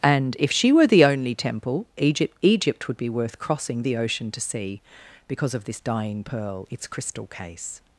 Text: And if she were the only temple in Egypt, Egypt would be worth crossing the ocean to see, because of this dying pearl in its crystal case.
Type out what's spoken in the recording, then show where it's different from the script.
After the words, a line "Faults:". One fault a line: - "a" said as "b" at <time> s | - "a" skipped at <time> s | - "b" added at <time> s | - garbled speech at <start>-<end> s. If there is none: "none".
And if she were the only temple Egypt, Egypt would be worth crossing the ocean to see, because of this dying pearl its crystal case.
Faults:
- "in" skipped at 1.9 s
- "in" skipped at 6.7 s